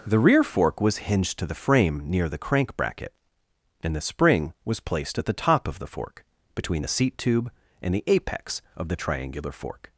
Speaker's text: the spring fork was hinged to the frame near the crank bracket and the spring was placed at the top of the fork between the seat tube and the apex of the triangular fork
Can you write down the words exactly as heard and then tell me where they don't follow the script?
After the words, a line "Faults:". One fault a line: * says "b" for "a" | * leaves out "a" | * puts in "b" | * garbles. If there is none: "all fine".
the rear fork was hinged to the frame near the crank bracket and the spring was placed at the top of the fork between the seat tube and the apex of the triangular fork
Faults:
* says "rear" for "spring"